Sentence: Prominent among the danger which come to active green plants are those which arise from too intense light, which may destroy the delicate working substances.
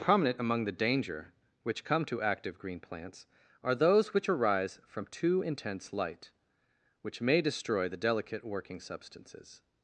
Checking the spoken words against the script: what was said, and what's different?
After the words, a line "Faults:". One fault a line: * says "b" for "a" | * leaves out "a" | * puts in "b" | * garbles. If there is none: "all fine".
Prominent among the danger which come to active green plants are those which arise from too intense light, which may destroy the delicate working substances.
Faults:
all fine